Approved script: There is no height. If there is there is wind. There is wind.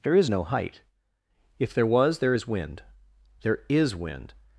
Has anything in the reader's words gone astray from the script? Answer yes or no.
yes